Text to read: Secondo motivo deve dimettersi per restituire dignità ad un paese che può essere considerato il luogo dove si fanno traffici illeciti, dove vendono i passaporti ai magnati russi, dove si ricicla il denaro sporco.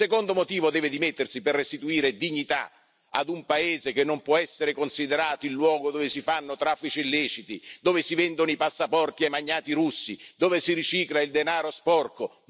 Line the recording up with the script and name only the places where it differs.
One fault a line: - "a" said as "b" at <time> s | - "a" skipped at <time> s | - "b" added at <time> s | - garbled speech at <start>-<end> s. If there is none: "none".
- "non" added at 4.0 s
- "si" added at 8.0 s